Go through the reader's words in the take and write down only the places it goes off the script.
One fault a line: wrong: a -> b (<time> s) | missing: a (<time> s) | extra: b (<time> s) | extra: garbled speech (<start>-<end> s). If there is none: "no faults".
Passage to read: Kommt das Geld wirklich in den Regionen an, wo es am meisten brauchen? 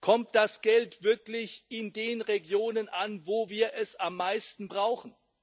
extra: wir (3.5 s)